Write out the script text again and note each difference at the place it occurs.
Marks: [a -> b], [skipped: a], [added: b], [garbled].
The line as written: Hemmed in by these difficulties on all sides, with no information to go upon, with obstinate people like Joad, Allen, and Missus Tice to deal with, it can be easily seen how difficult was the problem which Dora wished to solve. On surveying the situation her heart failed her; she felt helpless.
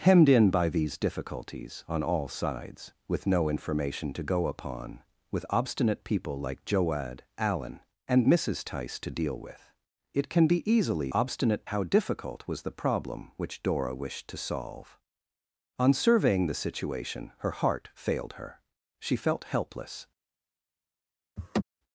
Hemmed in by these difficulties on all sides, with no information to go upon, with obstinate people like Joad, Allen, and Missus Tice to deal with, it can be easily [seen -> obstinate] how difficult was the problem which Dora wished to solve. On surveying the situation her heart failed her; she felt helpless.